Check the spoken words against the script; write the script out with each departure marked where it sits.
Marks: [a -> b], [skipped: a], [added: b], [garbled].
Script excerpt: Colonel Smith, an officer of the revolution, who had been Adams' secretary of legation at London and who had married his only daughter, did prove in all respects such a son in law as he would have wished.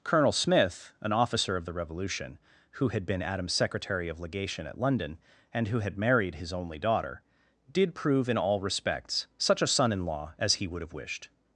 Colonel Smith, an officer of the revolution, who had been Adams' secretary of legation at London and who had married his only daughter, did prove in all respects such a son in law as he would have wished.